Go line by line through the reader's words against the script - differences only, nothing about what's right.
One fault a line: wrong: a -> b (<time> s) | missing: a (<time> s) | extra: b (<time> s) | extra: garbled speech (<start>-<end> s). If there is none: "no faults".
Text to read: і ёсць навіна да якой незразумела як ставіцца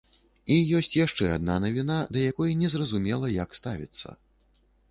extra: яшчэ адна (1.0 s)